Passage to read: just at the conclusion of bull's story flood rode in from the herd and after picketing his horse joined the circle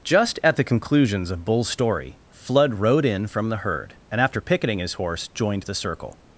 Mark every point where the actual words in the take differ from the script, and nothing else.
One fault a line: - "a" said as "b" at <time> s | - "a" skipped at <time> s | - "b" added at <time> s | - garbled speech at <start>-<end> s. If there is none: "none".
- "conclusion" said as "conclusions" at 0.6 s